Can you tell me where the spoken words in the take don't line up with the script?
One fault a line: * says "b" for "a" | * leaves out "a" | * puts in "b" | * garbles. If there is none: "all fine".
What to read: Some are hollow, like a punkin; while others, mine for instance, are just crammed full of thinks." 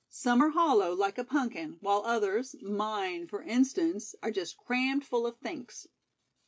all fine